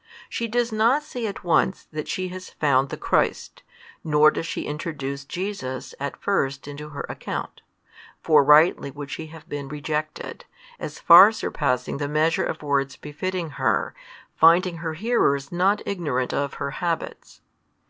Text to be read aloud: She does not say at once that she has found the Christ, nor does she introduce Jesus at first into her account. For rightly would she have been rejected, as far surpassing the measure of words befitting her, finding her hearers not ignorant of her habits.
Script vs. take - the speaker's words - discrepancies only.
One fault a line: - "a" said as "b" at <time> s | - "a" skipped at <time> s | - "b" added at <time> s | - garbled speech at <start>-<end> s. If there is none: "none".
none